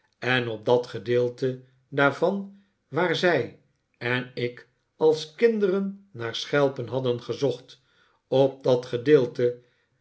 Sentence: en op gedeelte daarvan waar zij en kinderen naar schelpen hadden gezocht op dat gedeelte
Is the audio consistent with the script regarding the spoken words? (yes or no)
no